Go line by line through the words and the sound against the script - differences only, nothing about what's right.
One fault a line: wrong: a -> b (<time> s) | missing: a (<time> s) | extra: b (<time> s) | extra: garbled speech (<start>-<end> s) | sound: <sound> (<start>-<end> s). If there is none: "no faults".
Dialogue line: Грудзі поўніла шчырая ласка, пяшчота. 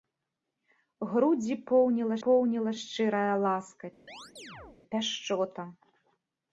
extra: поўніла (2.3 s)
sound: chirp (4.1-4.8 s)